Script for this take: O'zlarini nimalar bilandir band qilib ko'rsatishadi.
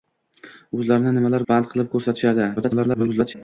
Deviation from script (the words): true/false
true